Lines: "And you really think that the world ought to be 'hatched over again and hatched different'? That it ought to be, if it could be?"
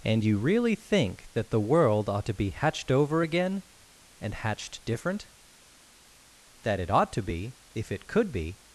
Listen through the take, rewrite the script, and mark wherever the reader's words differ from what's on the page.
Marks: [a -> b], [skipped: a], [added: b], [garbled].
"And you really think that the world ought to be 'hatched over again and hatched different'? That it ought to be, if it could be?"